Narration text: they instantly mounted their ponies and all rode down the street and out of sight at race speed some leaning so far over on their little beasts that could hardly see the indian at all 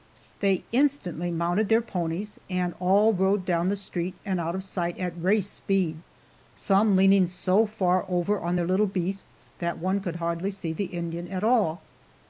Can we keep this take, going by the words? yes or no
no